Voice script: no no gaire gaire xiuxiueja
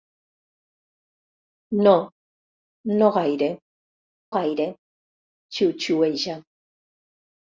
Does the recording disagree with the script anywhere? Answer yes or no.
no